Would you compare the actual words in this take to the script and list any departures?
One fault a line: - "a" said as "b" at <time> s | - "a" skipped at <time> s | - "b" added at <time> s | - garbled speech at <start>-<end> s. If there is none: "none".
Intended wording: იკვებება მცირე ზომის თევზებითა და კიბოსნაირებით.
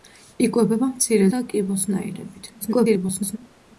- "ზომის თევზებითა" skipped at 1.3 s
- garbled speech at 2.6-3.4 s